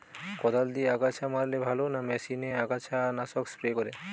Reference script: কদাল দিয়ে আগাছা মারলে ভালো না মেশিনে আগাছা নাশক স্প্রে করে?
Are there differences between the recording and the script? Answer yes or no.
no